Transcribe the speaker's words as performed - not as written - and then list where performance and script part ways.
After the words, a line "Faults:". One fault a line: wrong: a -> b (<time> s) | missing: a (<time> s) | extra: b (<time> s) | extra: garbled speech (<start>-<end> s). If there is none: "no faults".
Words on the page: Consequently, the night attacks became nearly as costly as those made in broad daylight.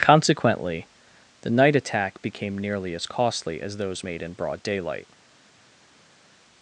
Consequently, the night attack became nearly as costly as those made in broad daylight.
Faults:
wrong: attacks -> attack (1.8 s)